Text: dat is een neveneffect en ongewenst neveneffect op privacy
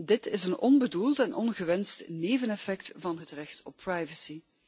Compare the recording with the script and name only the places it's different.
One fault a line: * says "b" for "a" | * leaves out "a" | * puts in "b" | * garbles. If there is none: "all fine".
* says "dit" for "dat"
* says "onbedoeld" for "neveneffect"
* puts in "van het recht"